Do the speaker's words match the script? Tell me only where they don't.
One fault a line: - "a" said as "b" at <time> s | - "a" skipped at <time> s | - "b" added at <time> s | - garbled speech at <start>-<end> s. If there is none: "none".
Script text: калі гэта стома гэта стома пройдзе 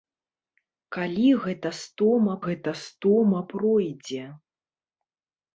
none